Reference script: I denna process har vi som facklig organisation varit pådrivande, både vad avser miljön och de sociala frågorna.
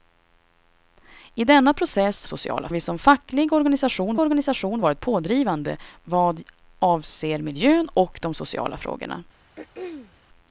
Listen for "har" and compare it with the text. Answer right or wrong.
wrong